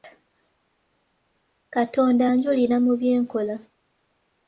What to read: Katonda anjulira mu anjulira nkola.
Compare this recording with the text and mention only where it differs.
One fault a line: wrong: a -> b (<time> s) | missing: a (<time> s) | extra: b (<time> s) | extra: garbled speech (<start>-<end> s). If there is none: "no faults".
wrong: anjulira -> bye (3.0 s)